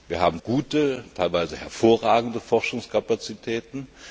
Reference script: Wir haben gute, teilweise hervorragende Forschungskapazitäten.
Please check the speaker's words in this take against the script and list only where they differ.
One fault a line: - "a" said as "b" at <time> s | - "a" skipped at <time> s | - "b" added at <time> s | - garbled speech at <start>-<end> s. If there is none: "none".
none